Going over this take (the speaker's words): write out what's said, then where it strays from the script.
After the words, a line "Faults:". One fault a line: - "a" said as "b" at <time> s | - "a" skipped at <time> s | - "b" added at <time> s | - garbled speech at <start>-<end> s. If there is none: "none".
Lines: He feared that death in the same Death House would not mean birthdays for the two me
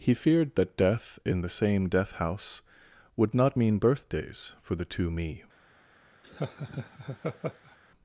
He feared that death in the same Death House would not mean birthdays for the two me
Faults:
none